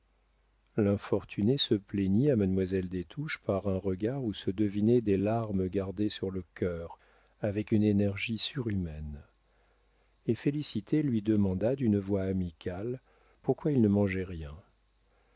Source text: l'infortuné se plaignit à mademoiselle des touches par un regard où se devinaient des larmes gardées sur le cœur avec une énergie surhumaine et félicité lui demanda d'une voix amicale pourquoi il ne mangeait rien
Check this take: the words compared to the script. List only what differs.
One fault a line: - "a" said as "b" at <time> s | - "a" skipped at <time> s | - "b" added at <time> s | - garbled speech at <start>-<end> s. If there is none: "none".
none